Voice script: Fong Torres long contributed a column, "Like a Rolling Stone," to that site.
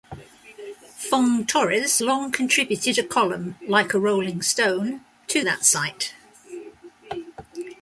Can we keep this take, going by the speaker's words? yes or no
yes